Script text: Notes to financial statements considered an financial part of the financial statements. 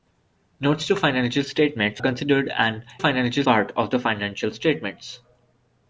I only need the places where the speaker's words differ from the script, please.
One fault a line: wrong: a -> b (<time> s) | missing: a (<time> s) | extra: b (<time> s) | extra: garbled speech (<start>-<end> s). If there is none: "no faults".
no faults